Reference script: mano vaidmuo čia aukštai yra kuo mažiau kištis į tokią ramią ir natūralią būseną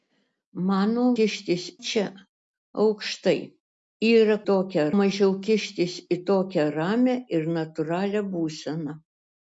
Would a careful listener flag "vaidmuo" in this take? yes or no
yes